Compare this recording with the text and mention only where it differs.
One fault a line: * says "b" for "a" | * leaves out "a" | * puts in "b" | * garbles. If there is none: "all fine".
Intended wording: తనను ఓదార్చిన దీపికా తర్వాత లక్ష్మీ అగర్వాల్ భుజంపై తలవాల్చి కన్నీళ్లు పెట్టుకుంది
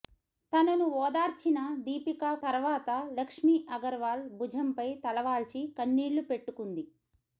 all fine